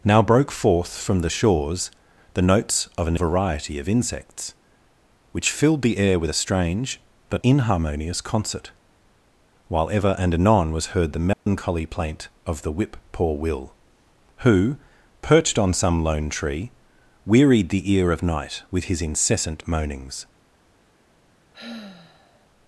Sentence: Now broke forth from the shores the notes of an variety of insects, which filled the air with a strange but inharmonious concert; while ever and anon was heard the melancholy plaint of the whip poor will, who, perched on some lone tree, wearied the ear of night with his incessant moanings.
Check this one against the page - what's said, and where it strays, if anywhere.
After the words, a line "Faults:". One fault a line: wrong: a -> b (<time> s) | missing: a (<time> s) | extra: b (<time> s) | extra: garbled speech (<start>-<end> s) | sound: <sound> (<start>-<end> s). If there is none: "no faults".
Now broke forth from the shores the notes of an variety of insects, which filled the air with a strange but inharmonious concert; while ever and anon was heard the melancholy plaint of the whip poor will, who, perched on some lone tree, wearied the ear of night with his incessant moanings.
Faults:
sound: dropout (11.3-11.5 s)
sound: sigh (21.5-22.5 s)